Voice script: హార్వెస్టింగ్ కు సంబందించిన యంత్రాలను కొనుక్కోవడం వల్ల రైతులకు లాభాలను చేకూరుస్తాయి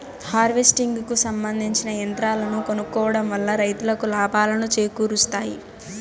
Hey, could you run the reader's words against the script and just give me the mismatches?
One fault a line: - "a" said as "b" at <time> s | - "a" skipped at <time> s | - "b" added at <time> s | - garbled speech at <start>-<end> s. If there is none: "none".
none